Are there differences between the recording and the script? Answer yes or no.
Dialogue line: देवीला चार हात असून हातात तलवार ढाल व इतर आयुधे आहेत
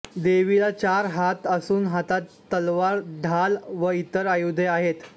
no